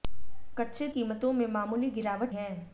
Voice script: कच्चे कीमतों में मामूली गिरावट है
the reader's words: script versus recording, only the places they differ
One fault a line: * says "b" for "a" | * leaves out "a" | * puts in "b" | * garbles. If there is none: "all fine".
all fine